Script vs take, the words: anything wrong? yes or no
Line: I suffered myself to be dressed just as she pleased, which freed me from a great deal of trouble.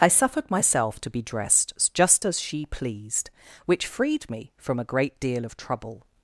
no